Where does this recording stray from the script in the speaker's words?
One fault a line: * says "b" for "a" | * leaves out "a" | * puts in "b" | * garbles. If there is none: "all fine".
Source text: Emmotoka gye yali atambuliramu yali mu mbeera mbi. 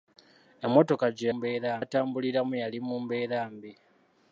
* says "mbeera" for "yali"